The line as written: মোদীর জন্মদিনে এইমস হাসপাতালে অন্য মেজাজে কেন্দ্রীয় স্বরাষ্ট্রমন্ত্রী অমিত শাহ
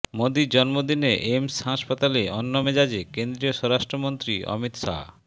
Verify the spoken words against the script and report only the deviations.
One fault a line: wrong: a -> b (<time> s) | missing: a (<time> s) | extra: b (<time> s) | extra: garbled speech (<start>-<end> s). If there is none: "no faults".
no faults